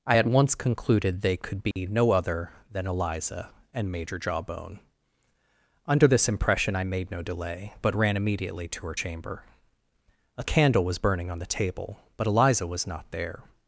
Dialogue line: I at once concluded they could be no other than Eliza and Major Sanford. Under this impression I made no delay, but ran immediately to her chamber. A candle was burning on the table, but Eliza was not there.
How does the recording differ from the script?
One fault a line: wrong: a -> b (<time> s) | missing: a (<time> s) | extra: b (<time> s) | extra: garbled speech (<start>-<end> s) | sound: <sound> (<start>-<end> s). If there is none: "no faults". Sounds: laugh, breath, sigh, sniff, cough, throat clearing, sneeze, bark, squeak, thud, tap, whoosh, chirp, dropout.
sound: dropout (1.7-1.8 s)
wrong: Sanford -> Jawbone (4.2 s)